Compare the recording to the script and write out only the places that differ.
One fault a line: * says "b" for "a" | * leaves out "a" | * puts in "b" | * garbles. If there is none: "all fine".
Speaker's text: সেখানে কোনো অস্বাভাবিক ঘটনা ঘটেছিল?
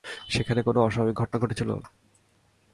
all fine